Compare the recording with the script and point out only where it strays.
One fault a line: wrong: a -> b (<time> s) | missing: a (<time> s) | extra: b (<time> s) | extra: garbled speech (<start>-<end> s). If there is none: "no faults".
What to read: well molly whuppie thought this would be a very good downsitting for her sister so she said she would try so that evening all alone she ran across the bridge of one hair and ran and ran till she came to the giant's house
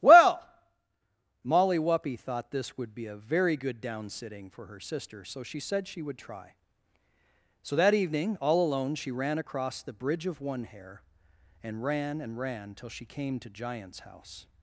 missing: the (13.5 s)